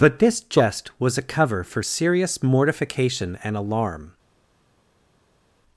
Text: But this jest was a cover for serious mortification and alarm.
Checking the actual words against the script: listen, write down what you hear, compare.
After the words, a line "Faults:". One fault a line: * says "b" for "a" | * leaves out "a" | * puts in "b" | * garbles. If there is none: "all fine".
But this jest was a cover for serious mortification and alarm.
Faults:
all fine